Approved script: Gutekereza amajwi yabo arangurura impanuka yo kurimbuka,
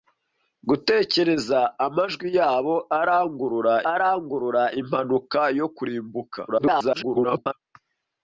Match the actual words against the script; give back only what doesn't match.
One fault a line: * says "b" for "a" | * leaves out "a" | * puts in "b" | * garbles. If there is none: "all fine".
* puts in "arangurura"
* garbles